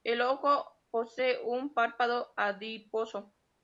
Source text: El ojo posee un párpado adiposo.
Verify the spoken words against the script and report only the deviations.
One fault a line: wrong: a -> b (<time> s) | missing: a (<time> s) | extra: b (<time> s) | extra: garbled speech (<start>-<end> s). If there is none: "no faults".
no faults